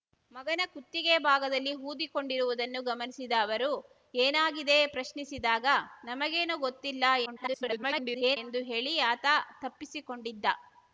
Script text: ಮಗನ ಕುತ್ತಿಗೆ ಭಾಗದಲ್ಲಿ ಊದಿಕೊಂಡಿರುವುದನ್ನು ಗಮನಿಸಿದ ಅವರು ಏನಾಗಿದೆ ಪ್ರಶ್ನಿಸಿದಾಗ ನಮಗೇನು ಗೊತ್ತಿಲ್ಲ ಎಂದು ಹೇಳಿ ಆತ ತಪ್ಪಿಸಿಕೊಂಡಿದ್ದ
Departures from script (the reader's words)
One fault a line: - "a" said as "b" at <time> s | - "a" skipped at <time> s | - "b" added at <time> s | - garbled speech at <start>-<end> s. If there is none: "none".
- garbled speech at 7.3-8.4 s